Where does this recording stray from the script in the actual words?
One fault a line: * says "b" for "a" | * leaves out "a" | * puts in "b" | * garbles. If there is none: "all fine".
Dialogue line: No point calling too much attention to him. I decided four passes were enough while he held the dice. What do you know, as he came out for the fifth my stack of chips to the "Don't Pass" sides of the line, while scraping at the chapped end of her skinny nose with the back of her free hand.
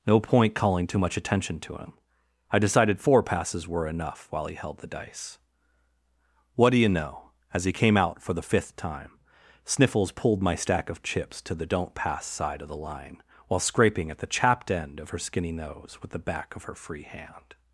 * puts in "time Sniffles pulled"
* says "side" for "sides"